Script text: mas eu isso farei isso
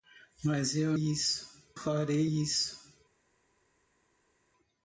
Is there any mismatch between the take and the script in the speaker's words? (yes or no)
no